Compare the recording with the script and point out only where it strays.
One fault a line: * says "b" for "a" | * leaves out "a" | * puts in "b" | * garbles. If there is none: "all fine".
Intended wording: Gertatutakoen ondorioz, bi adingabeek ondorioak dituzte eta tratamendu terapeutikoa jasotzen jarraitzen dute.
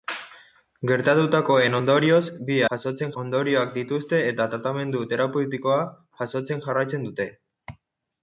* says "jasotzen" for "adingabeek"